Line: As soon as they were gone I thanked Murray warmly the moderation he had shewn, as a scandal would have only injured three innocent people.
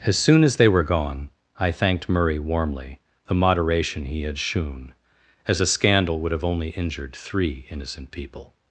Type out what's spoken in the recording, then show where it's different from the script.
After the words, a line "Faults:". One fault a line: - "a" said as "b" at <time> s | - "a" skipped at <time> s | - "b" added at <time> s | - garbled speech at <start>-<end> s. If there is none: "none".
As soon as they were gone I thanked Murray warmly the moderation he had shewn, as a scandal would have only injured three innocent people.
Faults:
none